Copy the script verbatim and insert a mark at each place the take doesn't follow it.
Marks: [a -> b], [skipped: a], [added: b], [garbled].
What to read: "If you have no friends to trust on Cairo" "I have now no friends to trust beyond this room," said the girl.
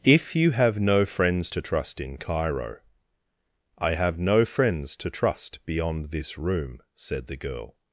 "If you have no friends to trust [on -> in] Cairo" "I have [skipped: now] no friends to trust beyond this room," said the girl.